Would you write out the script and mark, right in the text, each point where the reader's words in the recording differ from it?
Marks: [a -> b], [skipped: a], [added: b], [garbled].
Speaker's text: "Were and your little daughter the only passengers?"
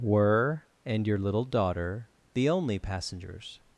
"Were and your little daughter the only passengers?"